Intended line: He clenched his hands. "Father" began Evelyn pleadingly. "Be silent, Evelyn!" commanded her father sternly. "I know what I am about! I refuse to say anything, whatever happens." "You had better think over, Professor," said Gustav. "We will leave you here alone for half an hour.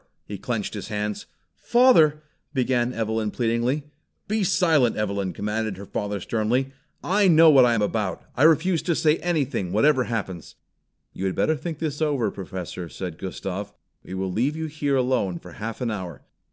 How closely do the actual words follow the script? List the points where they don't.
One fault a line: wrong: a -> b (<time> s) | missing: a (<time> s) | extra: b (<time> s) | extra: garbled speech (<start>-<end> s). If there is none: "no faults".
extra: this (11.8 s)